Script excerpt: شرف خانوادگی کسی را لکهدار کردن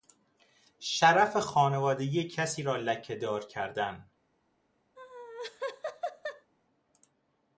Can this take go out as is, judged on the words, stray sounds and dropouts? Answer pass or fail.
fail